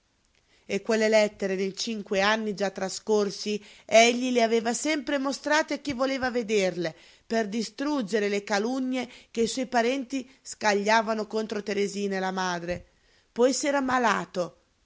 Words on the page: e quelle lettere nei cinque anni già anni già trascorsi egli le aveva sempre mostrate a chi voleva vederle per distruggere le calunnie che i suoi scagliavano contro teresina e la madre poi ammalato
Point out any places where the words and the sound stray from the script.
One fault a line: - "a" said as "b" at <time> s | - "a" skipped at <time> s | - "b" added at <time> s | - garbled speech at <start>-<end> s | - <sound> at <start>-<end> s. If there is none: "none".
- "anni già" skipped at 2.7 s
- "parenti" added at 9.7 s
- "s'era" added at 13.5 s